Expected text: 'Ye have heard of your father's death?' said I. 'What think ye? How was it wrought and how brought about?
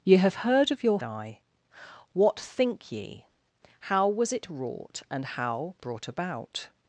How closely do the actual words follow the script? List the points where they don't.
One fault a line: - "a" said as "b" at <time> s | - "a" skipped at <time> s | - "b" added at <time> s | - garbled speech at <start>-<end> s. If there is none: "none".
- "father's death said" skipped at 1.0 s